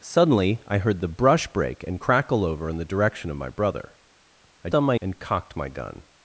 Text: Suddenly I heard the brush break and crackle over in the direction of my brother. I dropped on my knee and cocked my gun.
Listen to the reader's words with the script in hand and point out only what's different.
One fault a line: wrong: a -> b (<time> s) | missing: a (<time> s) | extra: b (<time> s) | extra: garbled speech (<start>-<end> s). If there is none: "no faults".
missing: dropped (4.7 s)
missing: knee (5.0 s)